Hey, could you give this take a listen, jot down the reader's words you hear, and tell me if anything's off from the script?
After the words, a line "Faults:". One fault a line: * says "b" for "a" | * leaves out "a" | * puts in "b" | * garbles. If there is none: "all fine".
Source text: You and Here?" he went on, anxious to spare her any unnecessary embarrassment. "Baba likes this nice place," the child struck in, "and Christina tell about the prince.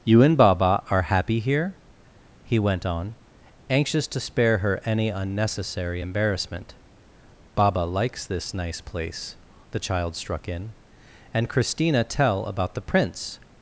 You and Baba are happy here?" he went on, anxious to spare her any unnecessary embarrassment. "Baba likes this nice place," the child struck in, "and Christina tell about the prince.
Faults:
* puts in "Baba are happy"